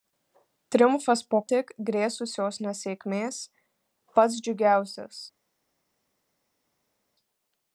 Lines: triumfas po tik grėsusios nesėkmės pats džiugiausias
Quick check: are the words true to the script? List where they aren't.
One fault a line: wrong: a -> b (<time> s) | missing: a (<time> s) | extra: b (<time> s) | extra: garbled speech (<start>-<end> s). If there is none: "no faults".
no faults